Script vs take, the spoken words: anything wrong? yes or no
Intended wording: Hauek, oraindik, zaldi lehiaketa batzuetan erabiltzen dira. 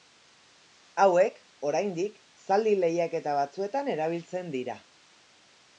no